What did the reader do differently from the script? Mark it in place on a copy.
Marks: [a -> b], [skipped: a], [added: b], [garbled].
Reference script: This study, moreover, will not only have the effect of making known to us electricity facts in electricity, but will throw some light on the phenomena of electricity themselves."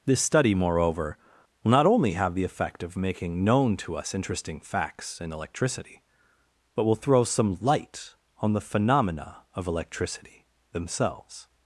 This study, moreover, will not only have the effect of making known to us [electricity -> interesting] facts in electricity, but will throw some light on the phenomena of electricity themselves."